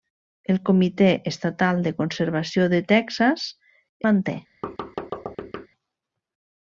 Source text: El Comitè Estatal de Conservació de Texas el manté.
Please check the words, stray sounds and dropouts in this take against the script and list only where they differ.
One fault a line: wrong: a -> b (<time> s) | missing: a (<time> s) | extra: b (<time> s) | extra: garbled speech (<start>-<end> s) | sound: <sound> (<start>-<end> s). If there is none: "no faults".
missing: el (3.5 s)
sound: thud (4.6-5.7 s)